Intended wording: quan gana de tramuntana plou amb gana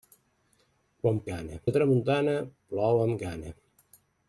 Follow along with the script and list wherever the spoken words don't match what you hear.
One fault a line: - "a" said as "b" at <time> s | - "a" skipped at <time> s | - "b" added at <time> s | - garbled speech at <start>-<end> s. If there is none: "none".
none